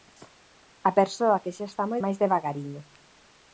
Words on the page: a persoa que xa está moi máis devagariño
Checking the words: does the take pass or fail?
pass